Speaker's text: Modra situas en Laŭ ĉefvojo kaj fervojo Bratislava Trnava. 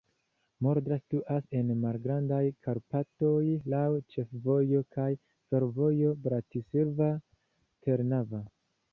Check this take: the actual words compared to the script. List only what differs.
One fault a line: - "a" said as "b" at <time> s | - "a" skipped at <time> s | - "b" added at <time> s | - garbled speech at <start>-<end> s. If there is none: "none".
- "Malgrandaj Karpatoj" added at 1.8 s